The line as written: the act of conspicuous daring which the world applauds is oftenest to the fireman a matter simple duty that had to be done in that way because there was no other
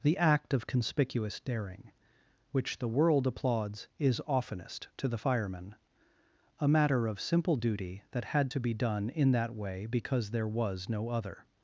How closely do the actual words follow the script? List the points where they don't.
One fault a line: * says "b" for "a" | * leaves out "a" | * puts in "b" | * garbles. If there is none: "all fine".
* puts in "of"